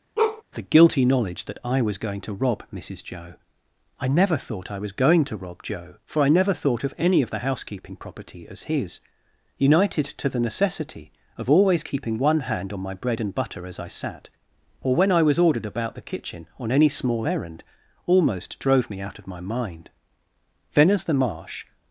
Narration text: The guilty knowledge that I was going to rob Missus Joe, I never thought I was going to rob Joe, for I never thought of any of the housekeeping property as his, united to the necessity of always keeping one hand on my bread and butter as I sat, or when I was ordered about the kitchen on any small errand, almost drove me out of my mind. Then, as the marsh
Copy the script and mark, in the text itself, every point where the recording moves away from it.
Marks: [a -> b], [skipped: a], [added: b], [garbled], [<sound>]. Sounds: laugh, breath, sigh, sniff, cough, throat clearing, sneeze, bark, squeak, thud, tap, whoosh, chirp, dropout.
[bark] The guilty knowledge that I was going to rob Missus Joe, I never thought I was going to rob Joe, for I never thought of any of the housekeeping property as his, united to the necessity of always keeping one hand on my bread and butter as I sat, or when I was ordered about the kitchen on any small errand, almost drove me out of my mind. Then, as the marsh